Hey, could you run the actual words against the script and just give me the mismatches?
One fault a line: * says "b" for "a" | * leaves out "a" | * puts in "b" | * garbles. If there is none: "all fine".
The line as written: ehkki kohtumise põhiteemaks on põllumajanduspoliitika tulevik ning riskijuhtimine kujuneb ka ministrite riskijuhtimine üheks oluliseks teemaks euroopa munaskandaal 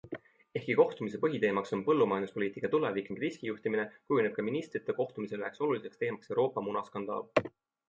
* says "kohtumisel" for "riskijuhtimine"